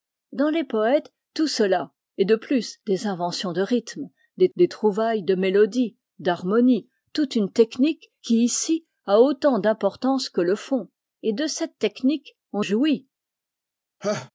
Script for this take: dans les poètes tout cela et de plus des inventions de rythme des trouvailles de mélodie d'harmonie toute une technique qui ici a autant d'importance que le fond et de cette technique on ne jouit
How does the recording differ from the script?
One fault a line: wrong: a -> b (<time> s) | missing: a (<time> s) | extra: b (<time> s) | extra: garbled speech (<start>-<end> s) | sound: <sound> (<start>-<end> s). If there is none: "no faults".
extra: des (4.6 s)
missing: ne (12.6 s)
sound: laugh (14.0-14.3 s)